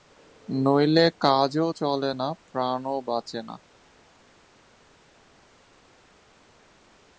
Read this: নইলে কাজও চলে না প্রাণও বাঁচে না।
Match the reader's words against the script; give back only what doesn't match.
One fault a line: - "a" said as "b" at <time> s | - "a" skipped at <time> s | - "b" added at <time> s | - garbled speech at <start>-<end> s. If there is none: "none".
none